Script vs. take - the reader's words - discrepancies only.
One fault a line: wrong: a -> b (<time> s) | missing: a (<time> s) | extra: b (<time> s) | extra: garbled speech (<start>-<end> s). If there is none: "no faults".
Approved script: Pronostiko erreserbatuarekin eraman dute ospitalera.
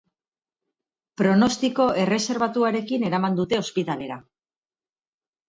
no faults